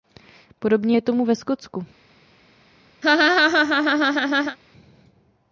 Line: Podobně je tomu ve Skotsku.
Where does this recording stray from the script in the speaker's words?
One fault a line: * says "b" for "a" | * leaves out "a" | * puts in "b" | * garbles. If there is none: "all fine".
all fine